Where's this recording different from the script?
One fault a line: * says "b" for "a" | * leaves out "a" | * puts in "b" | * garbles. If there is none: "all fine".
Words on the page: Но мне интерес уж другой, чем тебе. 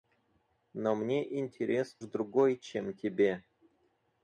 * leaves out "уж"